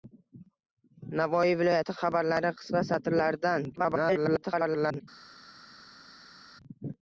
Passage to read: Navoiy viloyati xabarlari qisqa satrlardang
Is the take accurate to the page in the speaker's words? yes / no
no